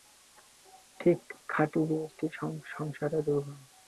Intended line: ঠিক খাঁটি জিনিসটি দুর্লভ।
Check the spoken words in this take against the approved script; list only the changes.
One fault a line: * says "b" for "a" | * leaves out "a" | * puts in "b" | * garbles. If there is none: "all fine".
* puts in "সংসারে"